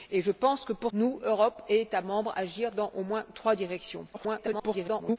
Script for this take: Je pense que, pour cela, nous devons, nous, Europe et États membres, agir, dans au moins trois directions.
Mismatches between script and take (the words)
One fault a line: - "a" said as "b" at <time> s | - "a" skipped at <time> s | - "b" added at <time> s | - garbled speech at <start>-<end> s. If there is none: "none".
- "cela nous devons" skipped at 0.9 s
- garbled speech at 4.1-5.2 s